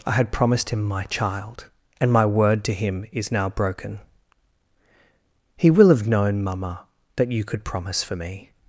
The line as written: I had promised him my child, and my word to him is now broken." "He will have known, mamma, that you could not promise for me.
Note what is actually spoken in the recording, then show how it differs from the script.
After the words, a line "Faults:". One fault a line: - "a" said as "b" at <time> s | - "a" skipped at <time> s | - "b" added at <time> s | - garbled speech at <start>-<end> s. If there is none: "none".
I had promised him my child, and my word to him is now broken." "He will have known, mamma, that you could promise for me.
Faults:
- "not" skipped at 7.6 s